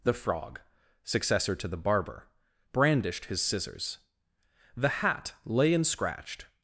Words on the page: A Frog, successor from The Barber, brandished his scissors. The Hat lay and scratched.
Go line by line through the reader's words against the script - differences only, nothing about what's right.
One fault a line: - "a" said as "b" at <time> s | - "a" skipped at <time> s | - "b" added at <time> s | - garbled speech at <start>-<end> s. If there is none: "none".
- "A" said as "The" at 0.0 s
- "from" said as "to" at 1.6 s